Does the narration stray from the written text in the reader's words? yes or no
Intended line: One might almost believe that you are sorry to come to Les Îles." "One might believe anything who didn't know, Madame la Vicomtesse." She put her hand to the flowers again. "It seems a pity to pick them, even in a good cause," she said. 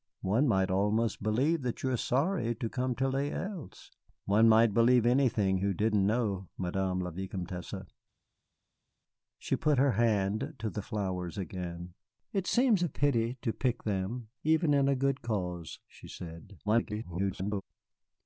yes